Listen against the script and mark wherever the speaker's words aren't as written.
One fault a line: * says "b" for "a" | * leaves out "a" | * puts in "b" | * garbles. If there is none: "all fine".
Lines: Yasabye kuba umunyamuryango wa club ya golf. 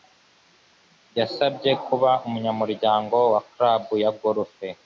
all fine